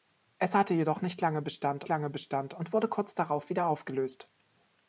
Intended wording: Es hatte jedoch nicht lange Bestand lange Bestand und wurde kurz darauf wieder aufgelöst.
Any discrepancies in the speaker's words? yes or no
no